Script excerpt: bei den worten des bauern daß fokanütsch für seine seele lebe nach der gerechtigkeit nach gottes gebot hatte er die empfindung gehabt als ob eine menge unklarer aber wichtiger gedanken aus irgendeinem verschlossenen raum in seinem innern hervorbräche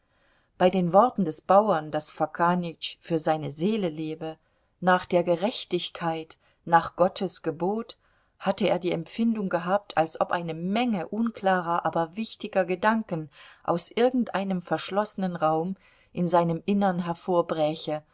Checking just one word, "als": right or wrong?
right